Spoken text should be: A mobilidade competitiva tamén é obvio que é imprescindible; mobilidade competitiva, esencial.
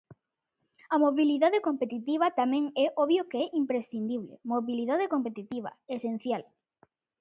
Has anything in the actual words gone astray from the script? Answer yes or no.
no